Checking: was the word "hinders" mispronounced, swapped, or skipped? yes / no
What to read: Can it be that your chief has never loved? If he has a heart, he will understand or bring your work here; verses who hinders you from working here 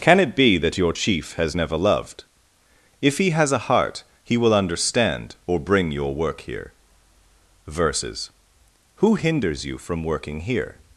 no